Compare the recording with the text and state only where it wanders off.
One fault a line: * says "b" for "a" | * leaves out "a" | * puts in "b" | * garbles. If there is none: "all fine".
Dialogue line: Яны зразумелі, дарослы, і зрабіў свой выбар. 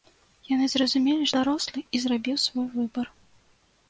all fine